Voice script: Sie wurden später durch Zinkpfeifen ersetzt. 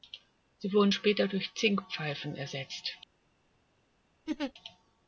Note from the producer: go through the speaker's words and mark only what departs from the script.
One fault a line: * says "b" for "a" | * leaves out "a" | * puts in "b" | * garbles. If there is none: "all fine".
all fine